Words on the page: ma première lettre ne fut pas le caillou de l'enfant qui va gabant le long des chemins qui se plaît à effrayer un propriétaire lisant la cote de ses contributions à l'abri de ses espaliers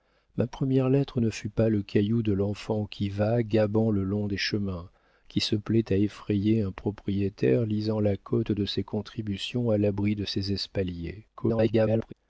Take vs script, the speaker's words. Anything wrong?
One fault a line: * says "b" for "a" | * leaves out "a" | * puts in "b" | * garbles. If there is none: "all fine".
* garbles